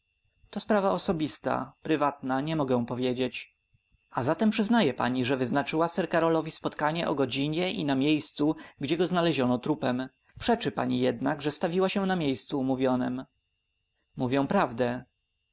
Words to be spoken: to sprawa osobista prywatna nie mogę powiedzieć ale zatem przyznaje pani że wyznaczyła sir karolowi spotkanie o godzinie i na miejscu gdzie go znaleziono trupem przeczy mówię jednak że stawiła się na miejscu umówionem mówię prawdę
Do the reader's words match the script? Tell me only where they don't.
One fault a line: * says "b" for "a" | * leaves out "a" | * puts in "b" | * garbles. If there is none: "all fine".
* says "a" for "ale"
* says "pani" for "mówię"